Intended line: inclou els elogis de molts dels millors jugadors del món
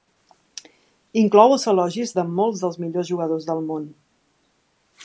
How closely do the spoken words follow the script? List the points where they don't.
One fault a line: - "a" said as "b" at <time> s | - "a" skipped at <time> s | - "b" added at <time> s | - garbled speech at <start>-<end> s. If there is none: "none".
none